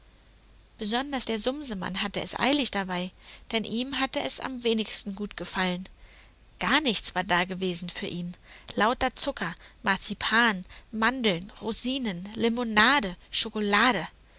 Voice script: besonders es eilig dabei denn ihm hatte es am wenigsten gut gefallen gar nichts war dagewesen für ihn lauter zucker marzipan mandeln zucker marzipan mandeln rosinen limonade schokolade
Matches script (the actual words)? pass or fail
fail